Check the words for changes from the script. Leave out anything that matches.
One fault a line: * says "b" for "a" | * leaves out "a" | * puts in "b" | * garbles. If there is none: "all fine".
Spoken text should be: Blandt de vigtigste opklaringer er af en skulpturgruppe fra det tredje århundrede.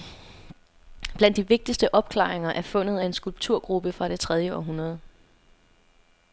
* puts in "fundet"